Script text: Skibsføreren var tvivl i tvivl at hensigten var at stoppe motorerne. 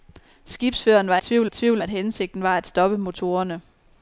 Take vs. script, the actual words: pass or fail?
pass